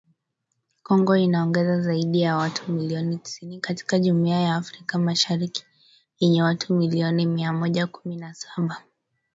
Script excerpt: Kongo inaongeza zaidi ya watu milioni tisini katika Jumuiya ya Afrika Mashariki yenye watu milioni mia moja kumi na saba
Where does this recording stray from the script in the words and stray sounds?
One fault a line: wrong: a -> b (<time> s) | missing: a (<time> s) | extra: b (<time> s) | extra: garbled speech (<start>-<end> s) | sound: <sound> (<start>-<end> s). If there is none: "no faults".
no faults